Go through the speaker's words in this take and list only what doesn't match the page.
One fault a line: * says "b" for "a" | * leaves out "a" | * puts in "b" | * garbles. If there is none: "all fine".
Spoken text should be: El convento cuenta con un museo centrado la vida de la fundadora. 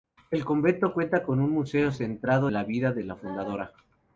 all fine